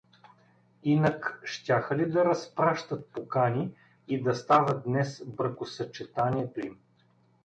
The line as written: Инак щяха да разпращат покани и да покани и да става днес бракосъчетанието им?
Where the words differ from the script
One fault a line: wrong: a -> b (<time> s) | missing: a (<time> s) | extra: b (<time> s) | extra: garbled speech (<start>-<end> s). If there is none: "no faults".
extra: ли (2.0 s)
missing: покани и да (4.3 s)